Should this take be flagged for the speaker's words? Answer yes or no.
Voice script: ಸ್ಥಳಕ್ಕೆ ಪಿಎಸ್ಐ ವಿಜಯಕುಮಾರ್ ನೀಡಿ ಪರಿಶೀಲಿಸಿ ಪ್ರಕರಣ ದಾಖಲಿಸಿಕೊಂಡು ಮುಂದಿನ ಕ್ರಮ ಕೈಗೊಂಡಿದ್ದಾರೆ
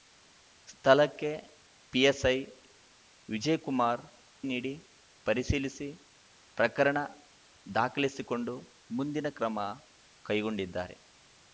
no